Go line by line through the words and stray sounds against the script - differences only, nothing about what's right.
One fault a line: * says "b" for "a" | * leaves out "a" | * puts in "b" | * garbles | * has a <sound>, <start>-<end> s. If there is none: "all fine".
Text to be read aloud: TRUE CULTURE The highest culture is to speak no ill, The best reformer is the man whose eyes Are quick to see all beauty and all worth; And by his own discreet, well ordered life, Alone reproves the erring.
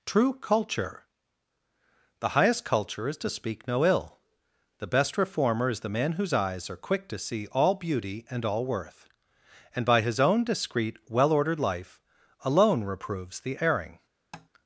* has a tap, 14.3-14.5 s